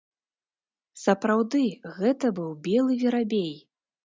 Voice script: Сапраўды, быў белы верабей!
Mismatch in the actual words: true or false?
true